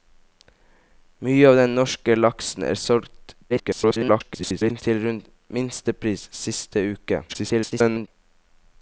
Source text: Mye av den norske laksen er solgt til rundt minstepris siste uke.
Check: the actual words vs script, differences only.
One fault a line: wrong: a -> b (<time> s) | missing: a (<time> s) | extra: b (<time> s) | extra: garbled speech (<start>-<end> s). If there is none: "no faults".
extra: garbled speech (3.5-4.8 s)
extra: garbled speech (7.3-8.1 s)